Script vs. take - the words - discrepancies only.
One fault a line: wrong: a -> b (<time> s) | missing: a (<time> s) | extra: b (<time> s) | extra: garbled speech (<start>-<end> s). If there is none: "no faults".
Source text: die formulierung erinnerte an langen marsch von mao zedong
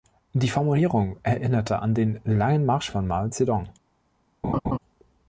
extra: den (1.9 s)